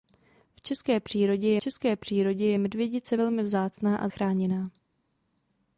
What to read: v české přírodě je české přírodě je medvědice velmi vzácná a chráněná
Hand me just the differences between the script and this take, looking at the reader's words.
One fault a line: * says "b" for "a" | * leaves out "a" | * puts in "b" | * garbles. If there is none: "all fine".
all fine